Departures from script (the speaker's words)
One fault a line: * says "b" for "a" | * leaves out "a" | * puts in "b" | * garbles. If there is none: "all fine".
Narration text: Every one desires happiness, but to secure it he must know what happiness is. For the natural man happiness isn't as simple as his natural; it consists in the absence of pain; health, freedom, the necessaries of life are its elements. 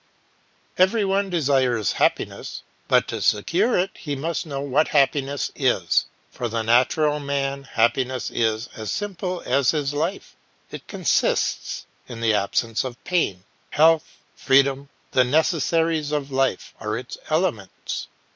* says "is" for "isn't"
* says "life" for "natural"